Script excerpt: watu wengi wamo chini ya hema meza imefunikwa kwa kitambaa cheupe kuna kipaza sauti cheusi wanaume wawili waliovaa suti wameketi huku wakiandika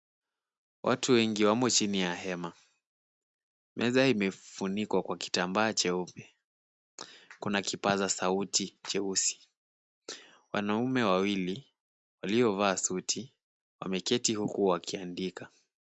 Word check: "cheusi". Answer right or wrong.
right